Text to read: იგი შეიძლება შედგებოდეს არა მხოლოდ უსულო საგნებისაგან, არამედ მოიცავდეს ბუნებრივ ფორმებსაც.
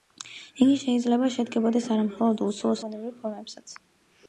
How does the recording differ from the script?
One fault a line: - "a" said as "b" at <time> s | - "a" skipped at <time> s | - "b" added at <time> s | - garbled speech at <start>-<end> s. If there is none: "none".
- "საგნებისაგან არამედ მოიცავდეს" skipped at 2.8 s